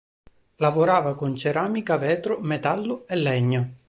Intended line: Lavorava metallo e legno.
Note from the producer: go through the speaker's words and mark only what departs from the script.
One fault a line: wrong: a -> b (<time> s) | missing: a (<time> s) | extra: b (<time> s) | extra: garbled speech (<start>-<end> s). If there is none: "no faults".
extra: con ceramica vetro (1.1 s)